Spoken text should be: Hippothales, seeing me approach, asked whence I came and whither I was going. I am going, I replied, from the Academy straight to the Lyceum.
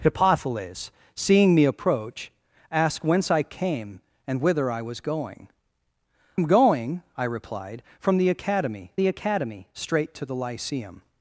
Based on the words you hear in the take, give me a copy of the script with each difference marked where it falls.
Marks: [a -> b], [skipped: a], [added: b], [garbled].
Hippothales, seeing me approach, asked whence I came and whither I was going. [skipped: I] am going, I replied, from the Academy [added: the Academy] straight to the Lyceum.